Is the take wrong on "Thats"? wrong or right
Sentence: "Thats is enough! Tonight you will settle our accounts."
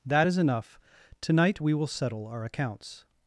wrong